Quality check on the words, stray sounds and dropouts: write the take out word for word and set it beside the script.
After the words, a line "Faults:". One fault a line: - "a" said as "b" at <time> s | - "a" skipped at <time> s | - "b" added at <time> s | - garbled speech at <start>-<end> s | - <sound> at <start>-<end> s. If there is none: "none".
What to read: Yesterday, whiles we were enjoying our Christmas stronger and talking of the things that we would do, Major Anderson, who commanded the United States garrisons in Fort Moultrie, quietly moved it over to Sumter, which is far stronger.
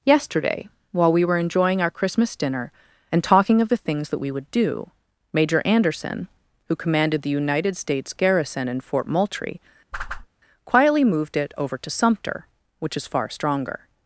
Yesterday, while we were enjoying our Christmas dinner and talking of the things that we would do, Major Anderson, who commanded the United States garrison in Fort Moultrie, quietly moved it over to Sumter, which is far stronger.
Faults:
- "whiles" said as "while" at 0.9 s
- "stronger" said as "dinner" at 2.4 s
- "garrisons" said as "garrison" at 8.1 s
- whoosh at 9.9-10.3 s